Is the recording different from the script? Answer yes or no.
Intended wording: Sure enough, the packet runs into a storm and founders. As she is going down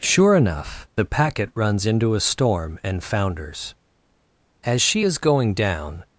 no